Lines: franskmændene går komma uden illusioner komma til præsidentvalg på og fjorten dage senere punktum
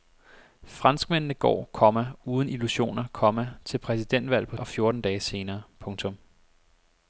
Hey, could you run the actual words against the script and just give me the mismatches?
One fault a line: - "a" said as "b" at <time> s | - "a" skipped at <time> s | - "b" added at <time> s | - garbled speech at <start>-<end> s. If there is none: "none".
none